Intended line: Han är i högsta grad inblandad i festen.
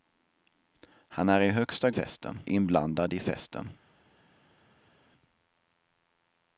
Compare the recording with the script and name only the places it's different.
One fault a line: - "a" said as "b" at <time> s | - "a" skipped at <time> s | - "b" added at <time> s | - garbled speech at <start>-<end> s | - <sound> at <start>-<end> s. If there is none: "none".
- "grad" said as "festen" at 1.9 s